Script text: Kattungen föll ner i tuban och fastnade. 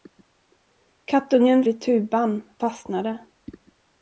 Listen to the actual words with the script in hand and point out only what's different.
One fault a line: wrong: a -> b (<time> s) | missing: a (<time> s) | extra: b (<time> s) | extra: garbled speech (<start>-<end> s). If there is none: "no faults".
missing: föll ner (1.6 s)
missing: och (2.4 s)